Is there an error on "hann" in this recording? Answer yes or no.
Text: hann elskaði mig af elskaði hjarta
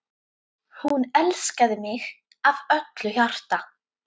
yes